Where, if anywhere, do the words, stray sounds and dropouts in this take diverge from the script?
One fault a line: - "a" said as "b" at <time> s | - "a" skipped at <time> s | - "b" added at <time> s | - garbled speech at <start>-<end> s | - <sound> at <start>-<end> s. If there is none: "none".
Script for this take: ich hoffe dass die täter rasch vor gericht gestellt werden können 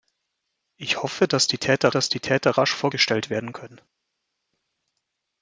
- "dass die täter" added at 1.9 s
- "gericht" skipped at 2.9 s